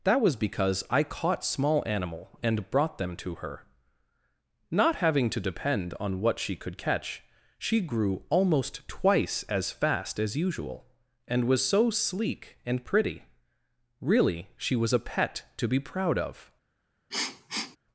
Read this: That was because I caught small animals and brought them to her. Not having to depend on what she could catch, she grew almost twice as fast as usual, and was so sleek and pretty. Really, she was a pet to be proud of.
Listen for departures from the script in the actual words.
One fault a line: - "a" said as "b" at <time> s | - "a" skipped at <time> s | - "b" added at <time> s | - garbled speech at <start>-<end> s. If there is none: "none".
- "animals" said as "animal" at 1.9 s